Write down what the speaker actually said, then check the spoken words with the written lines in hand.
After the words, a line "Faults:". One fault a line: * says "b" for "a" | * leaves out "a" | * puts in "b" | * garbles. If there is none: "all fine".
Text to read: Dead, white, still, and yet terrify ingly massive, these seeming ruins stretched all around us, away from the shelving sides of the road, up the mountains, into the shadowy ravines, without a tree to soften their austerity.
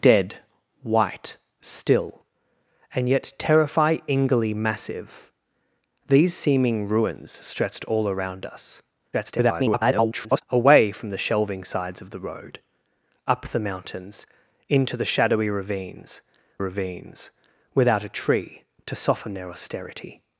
Dead, white, still, and yet terrify ingly massive, these seeming ruins stretched all around us, [garbled] away from the shelving sides of the road, up the mountains, into the shadowy ravines ravines, without a tree to soften their austerity.
Faults:
* garbles
* puts in "ravines"